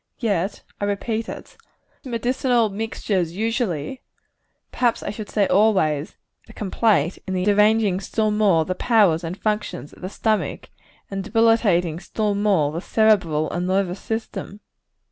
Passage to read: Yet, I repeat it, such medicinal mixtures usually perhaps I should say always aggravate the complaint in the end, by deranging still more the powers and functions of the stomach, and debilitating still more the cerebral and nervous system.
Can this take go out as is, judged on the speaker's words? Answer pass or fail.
fail